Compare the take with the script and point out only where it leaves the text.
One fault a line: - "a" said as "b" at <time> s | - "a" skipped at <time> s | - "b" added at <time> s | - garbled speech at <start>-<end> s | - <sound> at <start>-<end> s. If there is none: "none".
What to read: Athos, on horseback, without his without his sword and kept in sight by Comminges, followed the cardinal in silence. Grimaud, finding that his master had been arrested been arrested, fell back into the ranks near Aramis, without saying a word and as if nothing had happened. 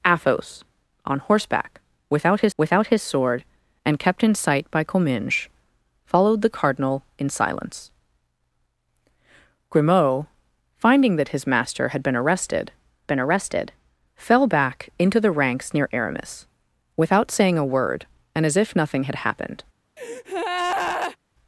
- breath at 20.0-21.2 s